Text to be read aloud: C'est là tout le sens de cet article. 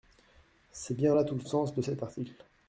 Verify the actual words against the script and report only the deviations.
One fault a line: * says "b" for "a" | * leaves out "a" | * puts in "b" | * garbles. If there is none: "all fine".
* puts in "bien"